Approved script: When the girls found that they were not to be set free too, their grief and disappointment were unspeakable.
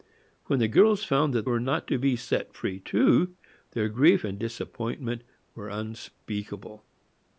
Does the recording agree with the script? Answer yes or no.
no